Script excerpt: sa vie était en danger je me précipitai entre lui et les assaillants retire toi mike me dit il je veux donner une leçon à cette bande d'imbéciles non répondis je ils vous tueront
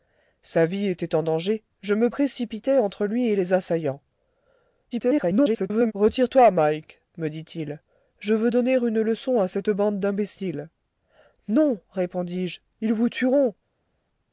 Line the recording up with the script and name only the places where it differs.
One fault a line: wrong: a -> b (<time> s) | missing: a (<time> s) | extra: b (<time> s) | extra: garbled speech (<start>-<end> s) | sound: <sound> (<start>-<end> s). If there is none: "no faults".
extra: garbled speech (4.9-5.9 s)